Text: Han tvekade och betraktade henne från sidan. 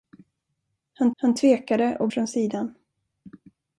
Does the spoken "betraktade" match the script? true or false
false